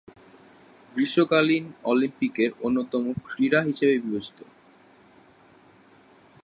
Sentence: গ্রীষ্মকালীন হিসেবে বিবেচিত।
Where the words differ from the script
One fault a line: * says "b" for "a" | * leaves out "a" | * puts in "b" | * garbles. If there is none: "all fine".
* puts in "অলিম্পিকের অন্যতম ক্রীড়া"